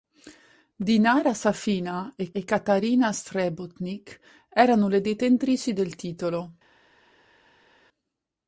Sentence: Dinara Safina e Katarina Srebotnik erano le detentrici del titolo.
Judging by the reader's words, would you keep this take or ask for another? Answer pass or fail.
fail